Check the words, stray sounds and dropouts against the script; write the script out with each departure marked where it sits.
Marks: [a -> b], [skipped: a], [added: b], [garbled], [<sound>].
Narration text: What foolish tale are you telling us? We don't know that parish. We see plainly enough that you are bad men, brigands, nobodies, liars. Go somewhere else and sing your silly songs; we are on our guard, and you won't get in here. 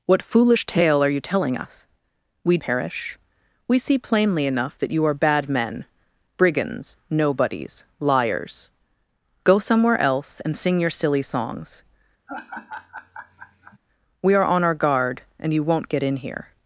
What foolish tale are you telling us? We [skipped: don't know that] parish. We see plainly enough that you are bad men, brigands, nobodies, liars. Go somewhere else and sing your silly songs; [laugh] we are on our guard, and you won't get in here.